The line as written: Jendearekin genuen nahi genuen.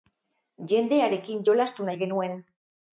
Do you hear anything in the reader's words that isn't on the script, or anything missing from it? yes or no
yes